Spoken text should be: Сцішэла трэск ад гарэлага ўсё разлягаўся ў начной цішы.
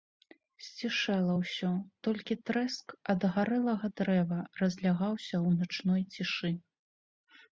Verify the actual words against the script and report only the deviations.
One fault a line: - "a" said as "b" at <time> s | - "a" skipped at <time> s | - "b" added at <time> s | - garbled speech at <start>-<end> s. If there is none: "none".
- "ўсё толькі" added at 1.4 s
- "ўсё" said as "дрэва" at 4.0 s